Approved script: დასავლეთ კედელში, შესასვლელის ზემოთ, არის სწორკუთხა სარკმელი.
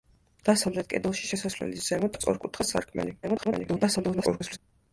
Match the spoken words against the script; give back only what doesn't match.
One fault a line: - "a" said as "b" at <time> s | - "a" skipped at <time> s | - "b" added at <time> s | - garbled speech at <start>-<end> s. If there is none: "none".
- "არის" skipped at 2.2 s
- garbled speech at 3.2-4.6 s